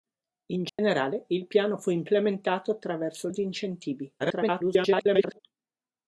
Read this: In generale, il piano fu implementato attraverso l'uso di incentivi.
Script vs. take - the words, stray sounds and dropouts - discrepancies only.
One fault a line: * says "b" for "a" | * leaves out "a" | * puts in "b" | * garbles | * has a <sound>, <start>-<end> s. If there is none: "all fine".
* has a dropout, 0.7-0.8 s
* leaves out "l'uso"
* garbles